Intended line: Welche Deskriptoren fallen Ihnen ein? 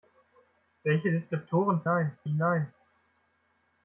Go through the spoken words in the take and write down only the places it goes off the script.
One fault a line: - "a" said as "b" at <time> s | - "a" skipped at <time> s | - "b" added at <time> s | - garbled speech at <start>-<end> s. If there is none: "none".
- "fallen" said as "ein" at 1.9 s